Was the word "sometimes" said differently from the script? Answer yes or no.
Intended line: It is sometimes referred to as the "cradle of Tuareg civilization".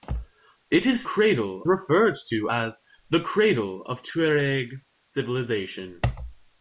yes